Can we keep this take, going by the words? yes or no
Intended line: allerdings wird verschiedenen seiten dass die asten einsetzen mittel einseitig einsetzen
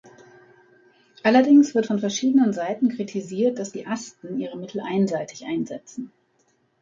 no